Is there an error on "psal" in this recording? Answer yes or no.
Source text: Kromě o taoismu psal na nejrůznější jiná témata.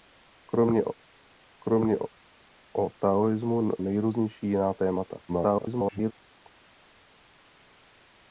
yes